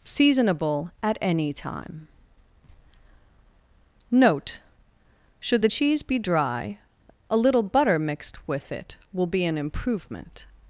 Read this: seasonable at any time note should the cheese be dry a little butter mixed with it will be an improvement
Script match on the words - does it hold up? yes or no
yes